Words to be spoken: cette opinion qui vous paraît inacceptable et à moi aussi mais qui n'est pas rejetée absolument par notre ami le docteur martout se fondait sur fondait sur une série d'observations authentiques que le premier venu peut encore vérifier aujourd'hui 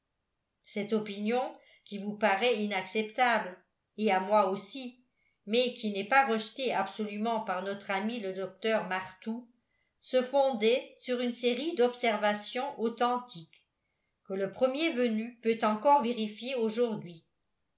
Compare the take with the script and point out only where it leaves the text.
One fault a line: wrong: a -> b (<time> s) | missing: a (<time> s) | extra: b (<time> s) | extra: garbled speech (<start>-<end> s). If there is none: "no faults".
missing: fondait sur (11.2 s)